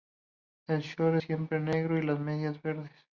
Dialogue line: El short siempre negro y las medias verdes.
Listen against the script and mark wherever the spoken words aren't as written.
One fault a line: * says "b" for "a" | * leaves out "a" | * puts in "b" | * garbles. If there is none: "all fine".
all fine